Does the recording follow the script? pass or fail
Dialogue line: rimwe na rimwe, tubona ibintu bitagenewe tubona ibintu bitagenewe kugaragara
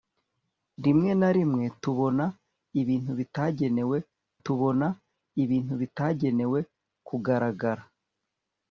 pass